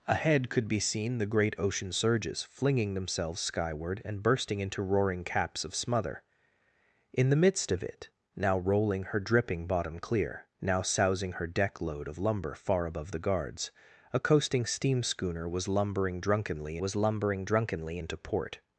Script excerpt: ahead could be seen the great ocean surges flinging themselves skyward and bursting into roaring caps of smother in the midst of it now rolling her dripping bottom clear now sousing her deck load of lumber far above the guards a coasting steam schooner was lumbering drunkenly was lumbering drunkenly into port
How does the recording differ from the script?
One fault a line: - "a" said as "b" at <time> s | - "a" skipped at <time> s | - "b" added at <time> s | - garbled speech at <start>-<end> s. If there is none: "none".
none